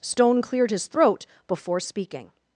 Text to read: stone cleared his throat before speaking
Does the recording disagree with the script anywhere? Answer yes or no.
no